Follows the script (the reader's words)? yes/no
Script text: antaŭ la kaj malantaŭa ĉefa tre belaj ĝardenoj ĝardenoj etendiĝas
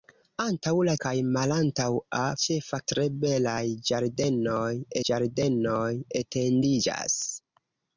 yes